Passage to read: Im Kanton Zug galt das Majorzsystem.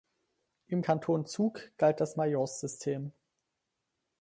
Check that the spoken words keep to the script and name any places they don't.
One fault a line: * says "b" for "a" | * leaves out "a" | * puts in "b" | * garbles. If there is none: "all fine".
all fine